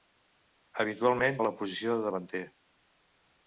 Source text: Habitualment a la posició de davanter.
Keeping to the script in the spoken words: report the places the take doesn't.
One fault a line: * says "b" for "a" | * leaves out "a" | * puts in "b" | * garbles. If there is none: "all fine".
all fine